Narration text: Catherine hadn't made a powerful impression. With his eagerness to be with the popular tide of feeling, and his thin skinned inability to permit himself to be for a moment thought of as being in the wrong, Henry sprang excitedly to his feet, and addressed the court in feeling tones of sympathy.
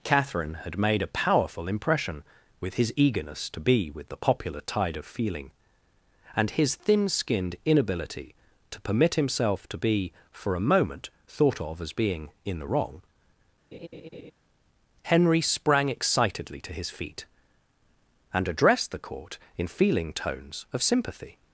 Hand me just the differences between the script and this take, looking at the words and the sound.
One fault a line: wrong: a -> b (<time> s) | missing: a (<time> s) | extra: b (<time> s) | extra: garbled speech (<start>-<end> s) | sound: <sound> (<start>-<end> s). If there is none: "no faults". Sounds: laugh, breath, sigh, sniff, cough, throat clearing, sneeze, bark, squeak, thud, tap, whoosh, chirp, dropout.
wrong: hadn't -> had (0.6 s)
sound: laugh (13.7-14.3 s)